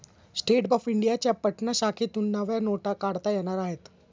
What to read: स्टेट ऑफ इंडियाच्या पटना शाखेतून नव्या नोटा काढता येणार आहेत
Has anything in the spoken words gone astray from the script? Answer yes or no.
no